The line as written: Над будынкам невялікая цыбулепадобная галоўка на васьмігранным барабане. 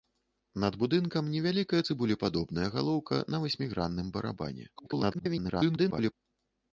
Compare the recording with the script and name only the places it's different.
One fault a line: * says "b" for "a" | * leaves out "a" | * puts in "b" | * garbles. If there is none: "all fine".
* garbles